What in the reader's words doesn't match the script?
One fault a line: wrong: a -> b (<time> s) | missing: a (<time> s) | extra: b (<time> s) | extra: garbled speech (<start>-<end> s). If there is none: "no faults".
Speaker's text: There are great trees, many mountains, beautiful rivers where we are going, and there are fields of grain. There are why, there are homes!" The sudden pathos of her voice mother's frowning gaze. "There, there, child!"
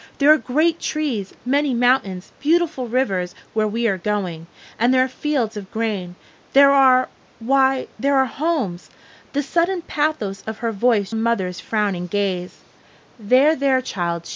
no faults